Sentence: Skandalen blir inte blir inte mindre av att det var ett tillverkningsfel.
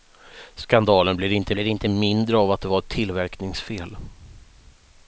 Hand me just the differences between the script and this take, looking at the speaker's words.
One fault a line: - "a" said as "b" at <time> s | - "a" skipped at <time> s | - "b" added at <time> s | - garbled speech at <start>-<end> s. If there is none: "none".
none